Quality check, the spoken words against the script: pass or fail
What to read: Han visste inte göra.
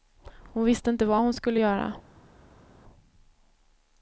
fail